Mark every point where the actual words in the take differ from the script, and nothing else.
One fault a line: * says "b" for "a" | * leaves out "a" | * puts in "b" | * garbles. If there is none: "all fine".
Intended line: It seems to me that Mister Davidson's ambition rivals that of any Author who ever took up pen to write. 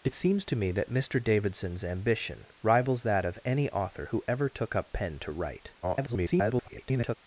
* garbles